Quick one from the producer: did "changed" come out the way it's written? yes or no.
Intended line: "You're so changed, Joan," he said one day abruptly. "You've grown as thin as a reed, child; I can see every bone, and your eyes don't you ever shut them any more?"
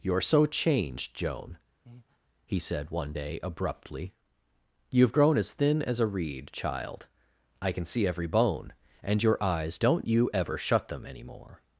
yes